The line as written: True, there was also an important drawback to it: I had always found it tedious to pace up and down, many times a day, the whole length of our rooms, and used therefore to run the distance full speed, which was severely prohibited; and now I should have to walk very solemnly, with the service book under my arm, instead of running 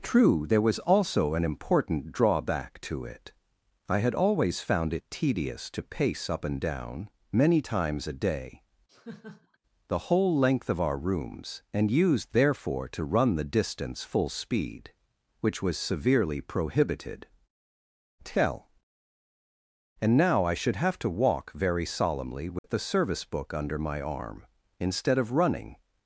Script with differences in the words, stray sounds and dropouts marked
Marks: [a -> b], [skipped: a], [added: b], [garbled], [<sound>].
True, there was also an important drawback to it: I had always found it tedious to pace up and down, many times a day, [laugh] the whole length of our rooms, and used therefore to run the distance full speed, which was severely prohibited; [added: tell] and now I should have to walk very solemnly, with [dropout] the service book under my arm, instead of running